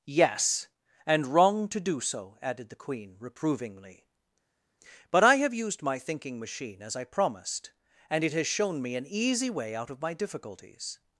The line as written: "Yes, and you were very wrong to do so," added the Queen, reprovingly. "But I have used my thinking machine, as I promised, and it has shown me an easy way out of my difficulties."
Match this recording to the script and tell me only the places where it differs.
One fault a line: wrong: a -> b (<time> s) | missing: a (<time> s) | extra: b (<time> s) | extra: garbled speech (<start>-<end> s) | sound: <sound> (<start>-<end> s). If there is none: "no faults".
missing: you were very (1.3 s)